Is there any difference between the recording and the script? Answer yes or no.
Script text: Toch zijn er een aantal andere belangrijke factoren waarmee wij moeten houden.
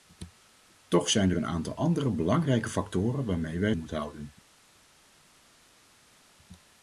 no